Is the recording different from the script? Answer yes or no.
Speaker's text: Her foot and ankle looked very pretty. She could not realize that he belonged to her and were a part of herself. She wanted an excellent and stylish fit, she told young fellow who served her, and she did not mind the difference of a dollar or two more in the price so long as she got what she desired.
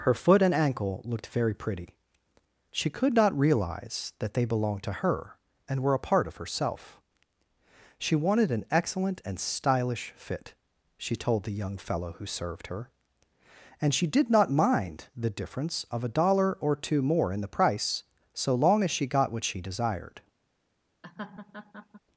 yes